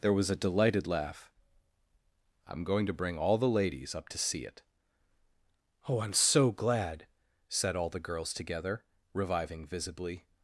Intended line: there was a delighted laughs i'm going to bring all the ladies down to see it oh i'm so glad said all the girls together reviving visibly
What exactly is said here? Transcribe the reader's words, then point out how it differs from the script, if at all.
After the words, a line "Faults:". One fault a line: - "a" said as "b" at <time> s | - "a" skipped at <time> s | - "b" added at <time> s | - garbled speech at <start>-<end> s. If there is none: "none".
there was a delighted laugh i'm going to bring all the ladies up to see it oh i'm so glad said all the girls together reviving visibly
Faults:
- "laughs" said as "laugh" at 0.9 s
- "down" said as "up" at 4.0 s